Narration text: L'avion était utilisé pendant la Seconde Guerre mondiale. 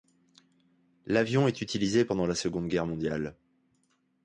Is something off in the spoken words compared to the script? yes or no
yes